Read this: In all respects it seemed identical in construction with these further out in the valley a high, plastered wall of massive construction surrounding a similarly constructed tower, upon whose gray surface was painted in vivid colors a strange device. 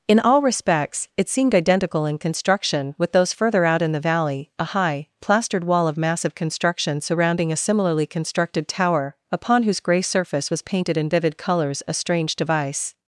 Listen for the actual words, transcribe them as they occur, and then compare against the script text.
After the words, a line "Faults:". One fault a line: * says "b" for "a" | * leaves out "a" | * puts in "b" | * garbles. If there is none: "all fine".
In all respects it seemed identical in construction with those further out in the valley a high, plastered wall of massive construction surrounding a similarly constructed tower, upon whose gray surface was painted in vivid colors a strange device.
Faults:
* says "those" for "these"